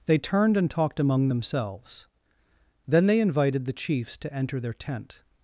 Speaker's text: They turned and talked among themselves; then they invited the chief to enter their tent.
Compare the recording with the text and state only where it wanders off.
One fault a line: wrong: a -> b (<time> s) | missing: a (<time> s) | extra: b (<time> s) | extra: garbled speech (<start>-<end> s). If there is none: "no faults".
wrong: chief -> chiefs (3.7 s)